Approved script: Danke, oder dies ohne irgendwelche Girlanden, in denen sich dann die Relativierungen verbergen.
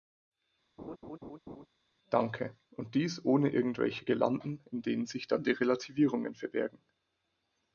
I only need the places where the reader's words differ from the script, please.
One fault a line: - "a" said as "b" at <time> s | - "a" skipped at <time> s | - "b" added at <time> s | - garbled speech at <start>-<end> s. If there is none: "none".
- "oder" said as "und" at 2.7 s